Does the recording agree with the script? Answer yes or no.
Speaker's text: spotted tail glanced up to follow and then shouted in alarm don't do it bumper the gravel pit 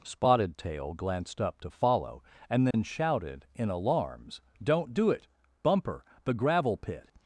no